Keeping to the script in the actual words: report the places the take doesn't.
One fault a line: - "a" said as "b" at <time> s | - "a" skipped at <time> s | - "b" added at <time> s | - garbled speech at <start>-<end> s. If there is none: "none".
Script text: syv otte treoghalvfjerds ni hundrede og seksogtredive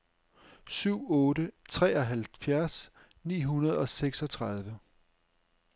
none